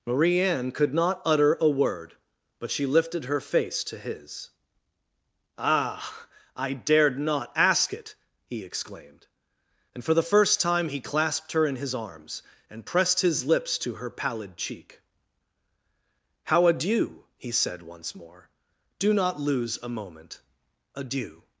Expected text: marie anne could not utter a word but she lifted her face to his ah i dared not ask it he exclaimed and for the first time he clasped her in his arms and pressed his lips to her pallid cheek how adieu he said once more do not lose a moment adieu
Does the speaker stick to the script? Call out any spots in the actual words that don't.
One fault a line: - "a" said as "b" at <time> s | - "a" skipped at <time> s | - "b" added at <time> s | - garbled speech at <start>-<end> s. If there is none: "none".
none